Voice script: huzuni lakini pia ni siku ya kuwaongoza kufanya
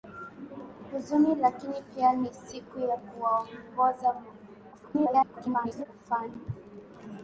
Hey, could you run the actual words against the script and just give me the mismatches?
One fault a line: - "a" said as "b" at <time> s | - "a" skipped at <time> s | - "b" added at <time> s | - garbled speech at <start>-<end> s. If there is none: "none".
- garbled speech at 4.7-5.9 s